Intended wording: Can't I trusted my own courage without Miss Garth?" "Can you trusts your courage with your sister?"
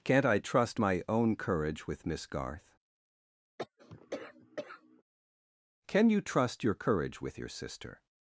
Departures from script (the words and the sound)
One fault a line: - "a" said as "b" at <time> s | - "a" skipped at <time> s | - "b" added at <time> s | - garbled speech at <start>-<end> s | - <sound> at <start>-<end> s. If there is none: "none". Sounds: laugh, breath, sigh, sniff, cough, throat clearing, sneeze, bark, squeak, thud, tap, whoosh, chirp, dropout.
- "trusted" said as "trust" at 0.4 s
- "without" said as "with" at 1.8 s
- cough at 3.6-5.0 s
- "trusts" said as "trust" at 6.2 s